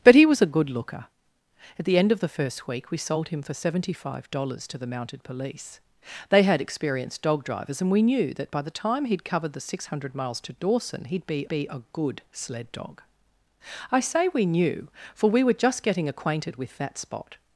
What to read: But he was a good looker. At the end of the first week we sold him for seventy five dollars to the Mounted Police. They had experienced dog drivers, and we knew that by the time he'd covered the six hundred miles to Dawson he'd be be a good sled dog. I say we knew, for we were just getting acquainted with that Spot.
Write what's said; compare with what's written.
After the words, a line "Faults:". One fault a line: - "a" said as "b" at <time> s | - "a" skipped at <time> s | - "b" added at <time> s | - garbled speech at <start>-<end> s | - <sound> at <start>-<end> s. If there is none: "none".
But he was a good looker. At the end of the first week we sold him for seventy five dollars to the Mounted Police. They had experienced dog drivers, and we knew that by the time he'd covered the six hundred miles to Dawson he'd be be a good sled dog. I say we knew, for we were just getting acquainted with that Spot.
Faults:
none